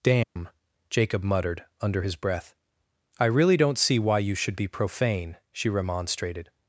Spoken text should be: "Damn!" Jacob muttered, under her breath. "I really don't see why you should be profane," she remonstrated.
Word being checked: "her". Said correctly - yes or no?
no